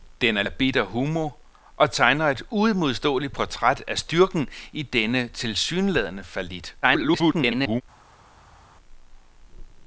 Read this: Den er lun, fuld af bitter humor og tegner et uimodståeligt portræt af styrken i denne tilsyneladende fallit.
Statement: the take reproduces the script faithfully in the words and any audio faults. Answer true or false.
false